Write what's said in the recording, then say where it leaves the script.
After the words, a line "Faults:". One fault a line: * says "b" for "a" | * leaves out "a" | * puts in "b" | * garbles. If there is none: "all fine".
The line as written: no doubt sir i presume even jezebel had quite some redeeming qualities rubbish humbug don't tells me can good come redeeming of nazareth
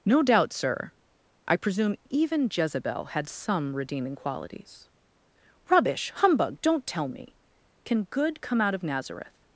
no doubt sir i presume even jezebel had some redeeming qualities rubbish humbug don't tell me can good come out of nazareth
Faults:
* leaves out "quite"
* says "tell" for "tells"
* says "out" for "redeeming"